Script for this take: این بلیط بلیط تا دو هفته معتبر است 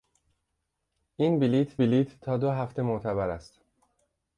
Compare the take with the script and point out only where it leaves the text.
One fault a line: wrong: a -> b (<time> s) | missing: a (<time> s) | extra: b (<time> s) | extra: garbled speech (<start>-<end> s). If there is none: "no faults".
no faults